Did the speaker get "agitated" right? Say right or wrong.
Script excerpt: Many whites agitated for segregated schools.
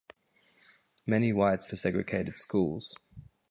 wrong